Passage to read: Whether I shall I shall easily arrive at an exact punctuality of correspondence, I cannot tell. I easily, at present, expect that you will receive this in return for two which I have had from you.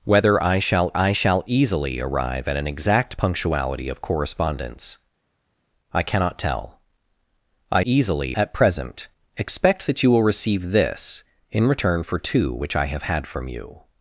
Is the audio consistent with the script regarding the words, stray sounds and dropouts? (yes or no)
yes